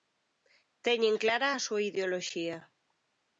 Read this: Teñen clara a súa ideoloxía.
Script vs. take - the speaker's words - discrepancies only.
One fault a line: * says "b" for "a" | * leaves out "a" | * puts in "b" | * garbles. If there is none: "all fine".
all fine